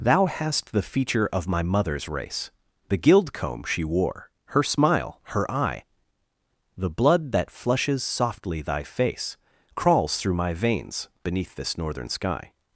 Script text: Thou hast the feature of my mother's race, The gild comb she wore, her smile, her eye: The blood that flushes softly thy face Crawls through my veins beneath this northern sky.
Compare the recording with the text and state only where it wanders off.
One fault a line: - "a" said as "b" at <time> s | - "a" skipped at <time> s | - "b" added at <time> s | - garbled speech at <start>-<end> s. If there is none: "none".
none